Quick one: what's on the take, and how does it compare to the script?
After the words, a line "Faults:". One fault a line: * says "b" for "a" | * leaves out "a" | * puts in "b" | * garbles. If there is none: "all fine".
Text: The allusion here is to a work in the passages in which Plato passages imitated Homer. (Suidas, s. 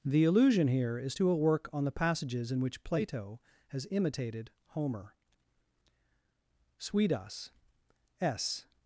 The allusion here is to a work on the passages in which Plato has imitated Homer. (Suidas, s.
Faults:
* says "on" for "in"
* says "has" for "passages"